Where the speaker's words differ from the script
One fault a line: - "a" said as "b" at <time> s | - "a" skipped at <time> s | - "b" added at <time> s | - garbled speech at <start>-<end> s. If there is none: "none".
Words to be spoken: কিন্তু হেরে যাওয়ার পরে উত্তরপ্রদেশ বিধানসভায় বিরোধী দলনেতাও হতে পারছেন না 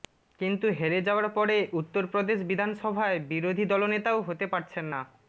none